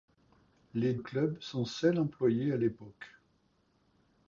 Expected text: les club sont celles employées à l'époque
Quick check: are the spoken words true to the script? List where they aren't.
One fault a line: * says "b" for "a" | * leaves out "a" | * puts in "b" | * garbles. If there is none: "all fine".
all fine